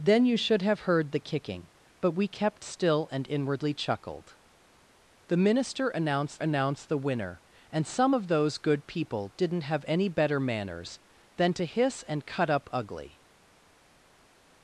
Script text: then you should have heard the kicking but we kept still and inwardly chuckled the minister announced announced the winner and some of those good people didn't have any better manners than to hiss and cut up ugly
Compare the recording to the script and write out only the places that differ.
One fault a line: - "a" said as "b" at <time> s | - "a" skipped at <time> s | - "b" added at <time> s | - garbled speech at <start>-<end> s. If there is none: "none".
none